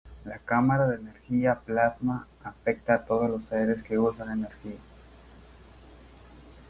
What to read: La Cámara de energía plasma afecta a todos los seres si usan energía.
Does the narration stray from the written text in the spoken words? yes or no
yes